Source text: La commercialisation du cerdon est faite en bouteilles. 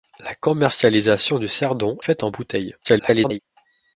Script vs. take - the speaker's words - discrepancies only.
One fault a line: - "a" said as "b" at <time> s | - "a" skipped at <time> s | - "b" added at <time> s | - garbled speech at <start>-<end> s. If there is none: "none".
- "est" skipped at 2.0 s
- garbled speech at 2.8-3.4 s